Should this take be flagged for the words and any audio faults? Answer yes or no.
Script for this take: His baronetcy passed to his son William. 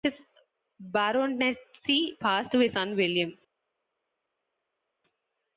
no